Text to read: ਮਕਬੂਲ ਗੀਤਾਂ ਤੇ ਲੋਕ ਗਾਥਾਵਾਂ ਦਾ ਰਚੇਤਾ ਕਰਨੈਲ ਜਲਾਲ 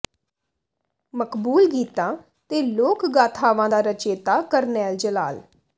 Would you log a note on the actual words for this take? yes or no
no